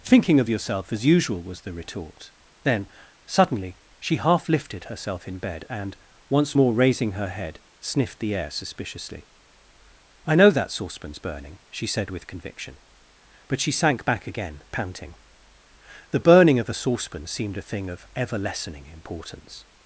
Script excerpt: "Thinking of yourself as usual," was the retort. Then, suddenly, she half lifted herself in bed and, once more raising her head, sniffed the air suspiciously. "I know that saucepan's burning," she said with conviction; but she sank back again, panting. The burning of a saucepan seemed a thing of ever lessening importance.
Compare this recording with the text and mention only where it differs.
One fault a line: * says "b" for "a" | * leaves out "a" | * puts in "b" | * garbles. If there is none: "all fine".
all fine